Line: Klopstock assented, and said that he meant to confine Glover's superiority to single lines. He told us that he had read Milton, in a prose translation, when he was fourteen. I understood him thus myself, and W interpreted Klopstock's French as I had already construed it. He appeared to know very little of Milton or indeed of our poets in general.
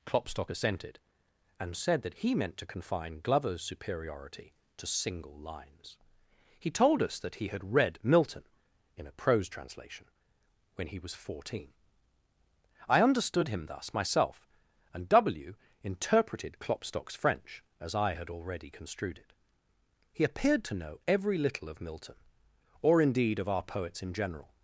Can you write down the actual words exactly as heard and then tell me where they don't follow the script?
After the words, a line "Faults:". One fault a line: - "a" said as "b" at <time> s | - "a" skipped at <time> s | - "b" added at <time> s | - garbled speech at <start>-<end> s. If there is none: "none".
Klopstock assented, and said that he meant to confine Glover's superiority to single lines. He told us that he had read Milton, in a prose translation, when he was fourteen. I understood him thus myself, and W interpreted Klopstock's French as I had already construed it. He appeared to know every little of Milton or indeed of our poets in general.
Faults:
- "very" said as "every" at 21.1 s